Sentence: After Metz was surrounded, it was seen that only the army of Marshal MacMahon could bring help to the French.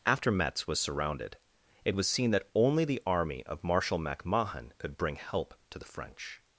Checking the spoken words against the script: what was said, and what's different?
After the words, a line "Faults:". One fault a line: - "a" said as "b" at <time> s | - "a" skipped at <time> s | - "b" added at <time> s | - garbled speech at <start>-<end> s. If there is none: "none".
After Metz was surrounded, it was seen that only the army of Marshal MacMahon could bring help to the French.
Faults:
none